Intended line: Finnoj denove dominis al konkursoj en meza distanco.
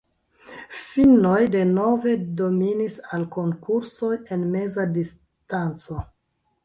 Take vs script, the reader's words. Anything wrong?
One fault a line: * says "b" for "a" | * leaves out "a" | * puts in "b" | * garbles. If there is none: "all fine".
all fine